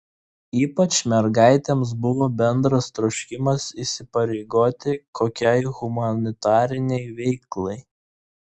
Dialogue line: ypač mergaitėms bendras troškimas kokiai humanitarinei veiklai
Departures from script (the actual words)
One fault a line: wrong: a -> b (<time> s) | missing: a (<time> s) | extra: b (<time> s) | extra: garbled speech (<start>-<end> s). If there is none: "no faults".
extra: buvo (2.0 s)
extra: įsipareigoti (3.9 s)